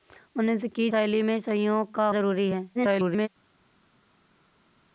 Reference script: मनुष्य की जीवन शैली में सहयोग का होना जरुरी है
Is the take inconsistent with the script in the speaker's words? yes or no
yes